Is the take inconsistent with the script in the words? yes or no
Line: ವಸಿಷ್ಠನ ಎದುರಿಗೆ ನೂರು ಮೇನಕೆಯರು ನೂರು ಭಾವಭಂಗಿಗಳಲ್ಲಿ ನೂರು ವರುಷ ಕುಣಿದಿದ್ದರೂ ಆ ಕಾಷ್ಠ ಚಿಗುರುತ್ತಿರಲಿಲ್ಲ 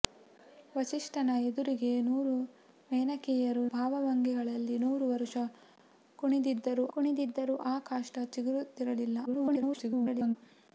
yes